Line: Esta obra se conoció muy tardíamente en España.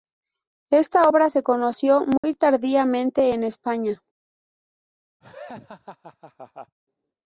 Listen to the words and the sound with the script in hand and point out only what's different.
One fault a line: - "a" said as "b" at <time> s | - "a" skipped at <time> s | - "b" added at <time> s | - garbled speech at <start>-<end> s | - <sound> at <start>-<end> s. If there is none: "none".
- dropout at 2.2-2.2 s
- laugh at 5.2-6.8 s